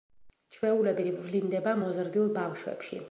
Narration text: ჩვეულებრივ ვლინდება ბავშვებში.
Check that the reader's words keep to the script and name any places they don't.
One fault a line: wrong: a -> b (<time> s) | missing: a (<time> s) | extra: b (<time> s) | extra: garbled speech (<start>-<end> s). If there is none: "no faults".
extra: მოზრდილ (1.8 s)